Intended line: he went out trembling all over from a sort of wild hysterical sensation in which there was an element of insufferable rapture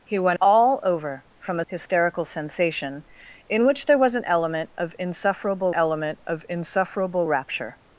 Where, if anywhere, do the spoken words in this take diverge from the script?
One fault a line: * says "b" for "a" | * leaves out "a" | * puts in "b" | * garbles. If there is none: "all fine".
* leaves out "out trembling"
* leaves out "sort of wild"
* puts in "element of insufferable"